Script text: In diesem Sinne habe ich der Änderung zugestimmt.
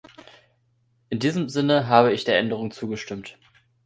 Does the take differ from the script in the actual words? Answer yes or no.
no